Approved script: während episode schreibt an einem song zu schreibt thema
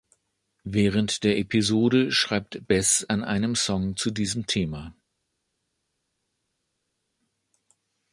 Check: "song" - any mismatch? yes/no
no